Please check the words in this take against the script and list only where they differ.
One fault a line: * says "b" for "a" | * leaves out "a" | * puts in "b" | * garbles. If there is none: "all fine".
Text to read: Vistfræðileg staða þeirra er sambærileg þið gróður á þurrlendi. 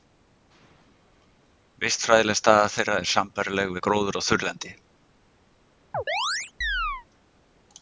* says "við" for "þið"